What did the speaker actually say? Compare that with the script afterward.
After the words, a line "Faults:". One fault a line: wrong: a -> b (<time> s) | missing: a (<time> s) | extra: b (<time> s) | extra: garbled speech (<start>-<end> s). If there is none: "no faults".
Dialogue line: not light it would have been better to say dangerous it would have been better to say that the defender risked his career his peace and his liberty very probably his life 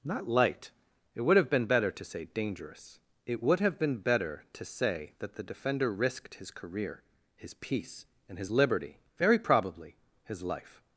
not light it would have been better to say dangerous it would have been better to say that the defender risked his career his peace and his liberty very probably his life
Faults:
no faults